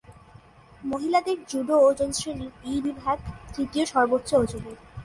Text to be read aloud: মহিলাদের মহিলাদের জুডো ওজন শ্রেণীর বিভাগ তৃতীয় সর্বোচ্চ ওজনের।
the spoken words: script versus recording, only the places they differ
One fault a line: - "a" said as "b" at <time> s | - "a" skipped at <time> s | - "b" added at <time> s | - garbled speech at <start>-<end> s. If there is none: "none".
- "মহিলাদের" skipped at 1.4 s
- "এই" added at 2.6 s